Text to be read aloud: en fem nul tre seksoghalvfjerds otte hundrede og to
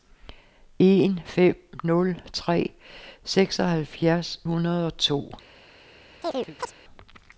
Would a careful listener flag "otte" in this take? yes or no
yes